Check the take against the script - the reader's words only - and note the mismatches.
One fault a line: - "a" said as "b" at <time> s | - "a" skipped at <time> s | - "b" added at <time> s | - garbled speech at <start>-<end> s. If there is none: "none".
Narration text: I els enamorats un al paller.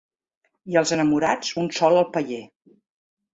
- "sol" added at 1.8 s